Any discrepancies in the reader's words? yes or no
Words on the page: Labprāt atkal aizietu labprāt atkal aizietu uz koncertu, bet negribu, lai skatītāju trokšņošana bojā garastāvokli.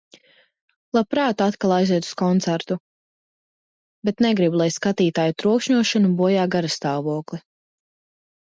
yes